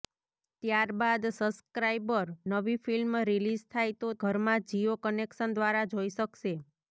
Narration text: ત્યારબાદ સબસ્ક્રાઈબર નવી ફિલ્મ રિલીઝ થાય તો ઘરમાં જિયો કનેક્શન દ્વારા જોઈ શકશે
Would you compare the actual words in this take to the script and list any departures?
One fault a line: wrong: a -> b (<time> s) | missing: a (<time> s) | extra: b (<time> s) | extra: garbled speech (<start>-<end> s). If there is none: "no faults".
no faults